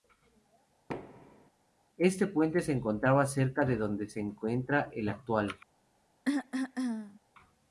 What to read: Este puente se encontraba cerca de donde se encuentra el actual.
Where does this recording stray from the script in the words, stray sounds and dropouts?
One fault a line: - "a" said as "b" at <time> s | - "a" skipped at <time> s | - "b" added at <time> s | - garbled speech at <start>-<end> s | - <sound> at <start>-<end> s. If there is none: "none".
- thud at 0.9-1.5 s
- cough at 6.2-7.2 s